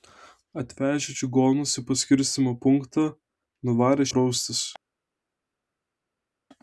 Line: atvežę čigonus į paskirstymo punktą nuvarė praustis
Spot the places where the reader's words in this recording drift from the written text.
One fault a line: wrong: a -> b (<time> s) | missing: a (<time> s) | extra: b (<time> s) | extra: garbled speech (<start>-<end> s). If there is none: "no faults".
no faults